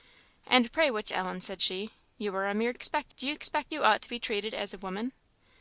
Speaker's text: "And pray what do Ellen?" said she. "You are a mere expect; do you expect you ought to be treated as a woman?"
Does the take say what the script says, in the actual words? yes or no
yes